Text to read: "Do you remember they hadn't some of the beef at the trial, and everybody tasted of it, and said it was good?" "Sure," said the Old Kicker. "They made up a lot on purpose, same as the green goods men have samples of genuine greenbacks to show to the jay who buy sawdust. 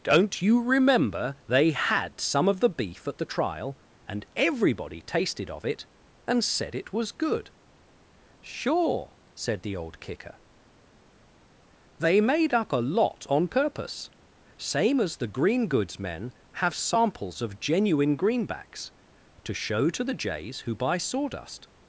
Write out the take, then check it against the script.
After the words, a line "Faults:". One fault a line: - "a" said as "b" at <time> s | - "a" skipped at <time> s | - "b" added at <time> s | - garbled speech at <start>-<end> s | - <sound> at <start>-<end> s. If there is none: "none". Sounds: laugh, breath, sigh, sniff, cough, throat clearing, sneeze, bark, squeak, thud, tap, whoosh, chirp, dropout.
"Don't you remember they had some of the beef at the trial, and everybody tasted of it, and said it was good?" "Sure," said the Old Kicker. "They made up a lot on purpose, same as the green goods men have samples of genuine greenbacks to show to the jays who buy sawdust.
Faults:
- "Do" said as "Don't" at 0.0 s
- "hadn't" said as "had" at 1.7 s
- "jay" said as "jays" at 20.1 s